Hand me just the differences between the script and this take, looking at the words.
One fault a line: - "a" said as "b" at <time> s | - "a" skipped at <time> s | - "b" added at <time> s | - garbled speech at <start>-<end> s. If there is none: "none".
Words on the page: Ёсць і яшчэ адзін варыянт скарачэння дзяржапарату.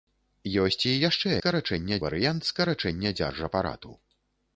- "адзін" said as "скарачэння" at 1.4 s